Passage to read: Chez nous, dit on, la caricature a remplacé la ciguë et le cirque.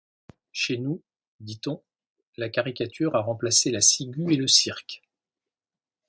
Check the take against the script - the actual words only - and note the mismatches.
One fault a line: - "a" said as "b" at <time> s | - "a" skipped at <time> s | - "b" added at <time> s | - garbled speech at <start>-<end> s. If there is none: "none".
none